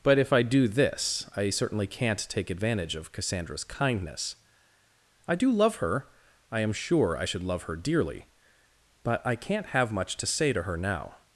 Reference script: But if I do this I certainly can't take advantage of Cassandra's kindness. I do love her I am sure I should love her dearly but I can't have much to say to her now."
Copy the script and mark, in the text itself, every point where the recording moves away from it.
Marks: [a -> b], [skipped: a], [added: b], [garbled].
But if I do this I certainly can't take advantage of Cassandra's kindness. I do love her I am sure I should love her dearly but I can't have much to say to her now."